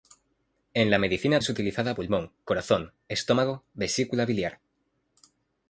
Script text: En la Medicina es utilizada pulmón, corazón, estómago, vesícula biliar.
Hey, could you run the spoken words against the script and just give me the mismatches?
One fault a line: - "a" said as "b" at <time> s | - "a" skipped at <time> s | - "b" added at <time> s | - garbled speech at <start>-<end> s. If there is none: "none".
none